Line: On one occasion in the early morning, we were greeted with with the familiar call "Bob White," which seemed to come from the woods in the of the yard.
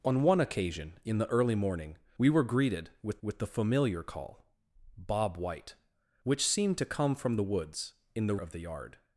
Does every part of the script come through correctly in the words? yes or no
yes